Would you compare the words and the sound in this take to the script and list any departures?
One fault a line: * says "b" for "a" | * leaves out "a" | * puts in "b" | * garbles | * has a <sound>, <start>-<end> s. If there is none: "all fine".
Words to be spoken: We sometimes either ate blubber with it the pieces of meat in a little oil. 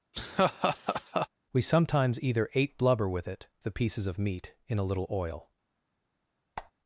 * has a laugh, 0.1-1.3 s
* has a squeak, 6.6-6.7 s